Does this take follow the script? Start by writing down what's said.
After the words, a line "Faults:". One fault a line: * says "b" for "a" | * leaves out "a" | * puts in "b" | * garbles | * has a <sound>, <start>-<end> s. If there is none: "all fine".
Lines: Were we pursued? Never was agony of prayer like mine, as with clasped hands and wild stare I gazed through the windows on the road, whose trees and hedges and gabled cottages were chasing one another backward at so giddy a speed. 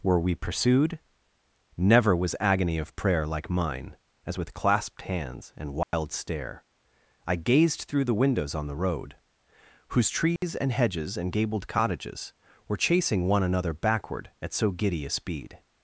Were we pursued? Never was agony of prayer like mine, as with clasped hands and wild stare I gazed through the windows on the road, whose trees and hedges and gabled cottages were chasing one another backward at so giddy a speed.
Faults:
* has a dropout, 5.8-5.9 s
* has a dropout, 10.4-10.4 s